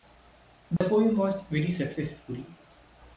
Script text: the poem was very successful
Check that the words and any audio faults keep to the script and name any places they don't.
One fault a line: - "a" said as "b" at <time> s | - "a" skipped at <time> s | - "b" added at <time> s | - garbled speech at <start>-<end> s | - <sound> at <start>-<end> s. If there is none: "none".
- dropout at 0.8-0.8 s